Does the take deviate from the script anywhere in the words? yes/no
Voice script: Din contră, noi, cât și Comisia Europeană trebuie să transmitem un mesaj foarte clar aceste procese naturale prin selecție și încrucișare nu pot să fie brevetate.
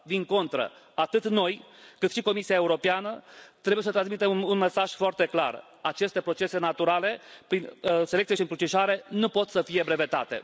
yes